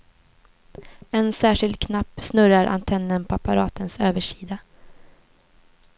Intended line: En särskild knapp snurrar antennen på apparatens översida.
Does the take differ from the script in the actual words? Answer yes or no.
no